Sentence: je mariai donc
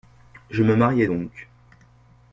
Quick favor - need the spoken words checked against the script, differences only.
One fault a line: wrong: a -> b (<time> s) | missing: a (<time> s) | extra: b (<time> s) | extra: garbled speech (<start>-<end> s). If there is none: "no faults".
extra: me (0.6 s)